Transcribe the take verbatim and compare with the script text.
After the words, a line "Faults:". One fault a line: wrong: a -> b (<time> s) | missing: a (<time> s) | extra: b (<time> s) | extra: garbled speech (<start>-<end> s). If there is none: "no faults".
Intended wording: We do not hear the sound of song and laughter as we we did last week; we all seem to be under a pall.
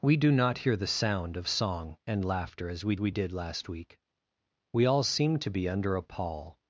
We do not hear the sound of song and laughter as we we did last week; we all seem to be under a pall.
Faults:
no faults